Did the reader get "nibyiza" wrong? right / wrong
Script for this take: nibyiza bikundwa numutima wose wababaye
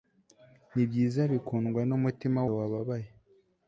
right